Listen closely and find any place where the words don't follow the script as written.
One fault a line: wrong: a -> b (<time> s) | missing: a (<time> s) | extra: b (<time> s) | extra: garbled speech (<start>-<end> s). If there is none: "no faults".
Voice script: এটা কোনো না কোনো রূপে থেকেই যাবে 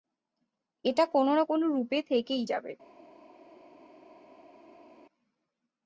no faults